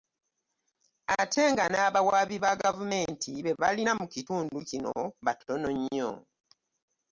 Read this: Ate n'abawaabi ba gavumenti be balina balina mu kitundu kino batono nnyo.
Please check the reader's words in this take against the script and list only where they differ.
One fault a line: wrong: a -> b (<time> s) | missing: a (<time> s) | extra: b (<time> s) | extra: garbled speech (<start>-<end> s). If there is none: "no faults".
extra: nga (1.5 s)
missing: balina (3.9 s)